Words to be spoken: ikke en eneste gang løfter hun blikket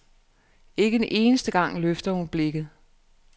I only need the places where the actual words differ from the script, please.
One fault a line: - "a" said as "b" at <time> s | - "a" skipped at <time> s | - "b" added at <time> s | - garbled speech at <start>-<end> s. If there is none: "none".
none